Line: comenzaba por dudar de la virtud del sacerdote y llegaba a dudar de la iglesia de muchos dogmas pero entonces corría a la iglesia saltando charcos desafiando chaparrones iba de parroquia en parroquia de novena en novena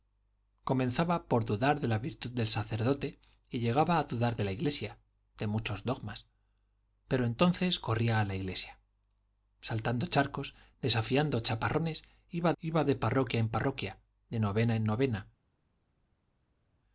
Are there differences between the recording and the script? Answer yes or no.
yes